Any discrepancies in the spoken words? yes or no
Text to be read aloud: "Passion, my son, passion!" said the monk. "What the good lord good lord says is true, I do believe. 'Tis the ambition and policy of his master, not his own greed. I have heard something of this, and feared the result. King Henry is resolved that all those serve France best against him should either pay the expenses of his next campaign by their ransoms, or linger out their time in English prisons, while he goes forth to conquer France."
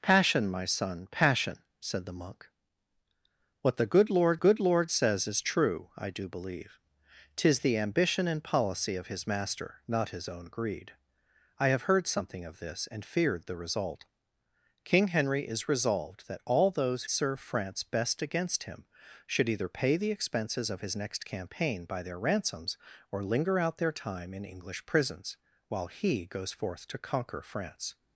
no